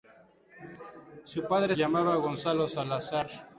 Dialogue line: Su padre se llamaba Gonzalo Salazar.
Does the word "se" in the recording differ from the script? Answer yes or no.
yes